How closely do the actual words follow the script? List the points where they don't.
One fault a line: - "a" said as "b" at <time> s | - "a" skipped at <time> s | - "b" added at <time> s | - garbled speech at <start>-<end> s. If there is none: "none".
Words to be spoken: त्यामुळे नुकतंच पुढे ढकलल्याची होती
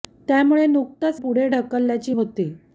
none